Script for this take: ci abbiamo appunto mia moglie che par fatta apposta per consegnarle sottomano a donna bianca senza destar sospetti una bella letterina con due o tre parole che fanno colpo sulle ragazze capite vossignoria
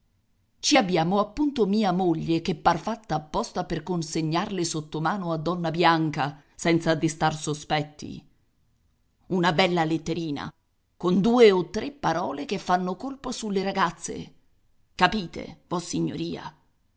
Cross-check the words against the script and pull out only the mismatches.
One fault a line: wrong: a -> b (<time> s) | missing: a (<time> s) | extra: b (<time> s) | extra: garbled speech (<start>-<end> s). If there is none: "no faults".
no faults